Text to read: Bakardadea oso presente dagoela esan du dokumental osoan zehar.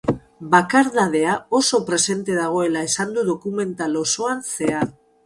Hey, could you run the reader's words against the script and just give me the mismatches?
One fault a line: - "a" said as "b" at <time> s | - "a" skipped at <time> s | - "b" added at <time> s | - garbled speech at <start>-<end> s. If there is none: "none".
none